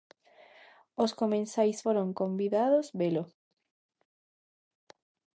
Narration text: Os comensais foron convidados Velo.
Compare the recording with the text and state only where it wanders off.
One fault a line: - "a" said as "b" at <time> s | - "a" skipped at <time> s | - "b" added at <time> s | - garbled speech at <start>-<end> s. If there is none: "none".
none